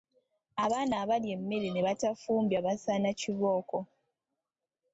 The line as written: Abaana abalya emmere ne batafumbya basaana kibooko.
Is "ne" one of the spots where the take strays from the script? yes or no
no